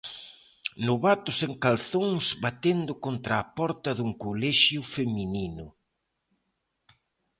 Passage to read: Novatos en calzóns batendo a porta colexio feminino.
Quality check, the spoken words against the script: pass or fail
fail